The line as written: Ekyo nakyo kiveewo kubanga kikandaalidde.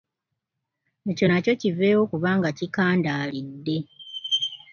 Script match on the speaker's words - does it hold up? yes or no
yes